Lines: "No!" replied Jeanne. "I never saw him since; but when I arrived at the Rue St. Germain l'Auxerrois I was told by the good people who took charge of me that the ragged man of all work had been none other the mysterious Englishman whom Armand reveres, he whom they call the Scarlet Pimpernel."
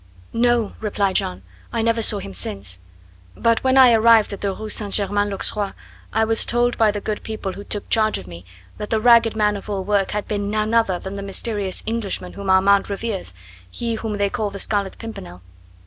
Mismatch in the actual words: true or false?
true